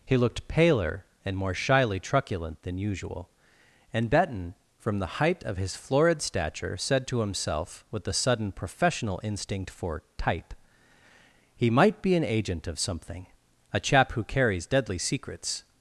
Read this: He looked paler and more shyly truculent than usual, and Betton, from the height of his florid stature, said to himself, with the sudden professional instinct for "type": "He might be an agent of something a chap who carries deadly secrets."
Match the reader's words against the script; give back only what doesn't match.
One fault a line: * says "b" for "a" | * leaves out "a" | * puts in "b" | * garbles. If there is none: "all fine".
all fine